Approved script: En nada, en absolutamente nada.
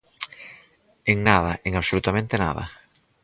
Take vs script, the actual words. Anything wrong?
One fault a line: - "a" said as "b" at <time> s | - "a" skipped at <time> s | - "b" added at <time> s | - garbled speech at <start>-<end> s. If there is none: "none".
none